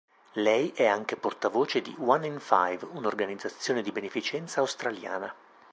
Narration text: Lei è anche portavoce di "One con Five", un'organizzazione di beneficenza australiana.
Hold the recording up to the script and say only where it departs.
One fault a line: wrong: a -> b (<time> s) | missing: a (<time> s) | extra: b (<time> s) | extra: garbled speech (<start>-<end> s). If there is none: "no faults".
wrong: con -> in (2.3 s)